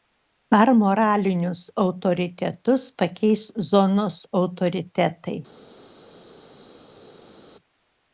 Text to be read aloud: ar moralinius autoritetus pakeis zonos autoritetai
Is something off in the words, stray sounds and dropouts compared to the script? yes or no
no